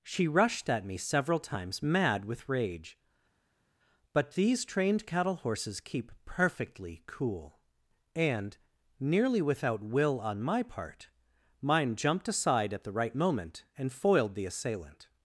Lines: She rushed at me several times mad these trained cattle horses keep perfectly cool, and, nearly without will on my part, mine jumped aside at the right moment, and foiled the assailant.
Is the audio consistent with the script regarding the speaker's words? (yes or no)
no